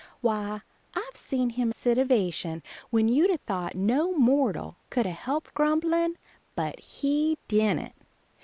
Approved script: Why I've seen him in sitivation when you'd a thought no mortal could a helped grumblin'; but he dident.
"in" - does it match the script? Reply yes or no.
no